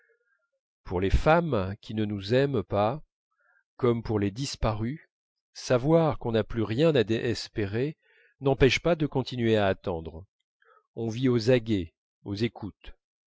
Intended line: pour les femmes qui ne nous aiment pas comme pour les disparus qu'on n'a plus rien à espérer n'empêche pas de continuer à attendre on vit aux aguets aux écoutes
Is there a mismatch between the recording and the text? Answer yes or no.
yes